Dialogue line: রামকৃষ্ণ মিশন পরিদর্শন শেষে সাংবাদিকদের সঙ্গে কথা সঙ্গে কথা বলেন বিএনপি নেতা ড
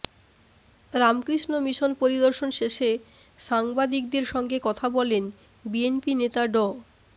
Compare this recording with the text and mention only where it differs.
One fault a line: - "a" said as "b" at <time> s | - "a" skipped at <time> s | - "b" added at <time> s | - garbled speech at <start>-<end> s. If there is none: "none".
- "সঙ্গে কথা" skipped at 4.9 s